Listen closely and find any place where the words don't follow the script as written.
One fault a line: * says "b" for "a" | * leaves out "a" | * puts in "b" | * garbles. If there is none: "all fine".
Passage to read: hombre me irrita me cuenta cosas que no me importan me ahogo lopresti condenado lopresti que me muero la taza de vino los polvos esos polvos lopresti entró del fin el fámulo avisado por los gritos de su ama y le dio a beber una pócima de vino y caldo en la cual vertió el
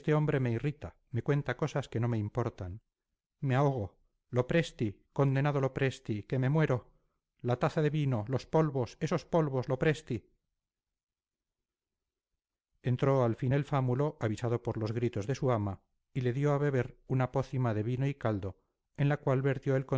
* says "al" for "del"